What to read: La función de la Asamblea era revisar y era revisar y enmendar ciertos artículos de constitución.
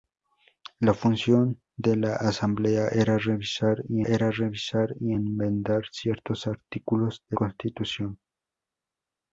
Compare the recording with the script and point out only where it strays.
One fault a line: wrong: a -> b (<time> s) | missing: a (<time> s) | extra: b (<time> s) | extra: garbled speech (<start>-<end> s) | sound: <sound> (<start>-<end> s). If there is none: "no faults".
no faults